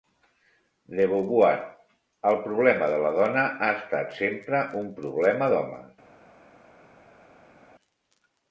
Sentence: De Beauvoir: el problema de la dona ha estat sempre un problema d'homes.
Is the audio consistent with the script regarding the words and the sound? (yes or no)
yes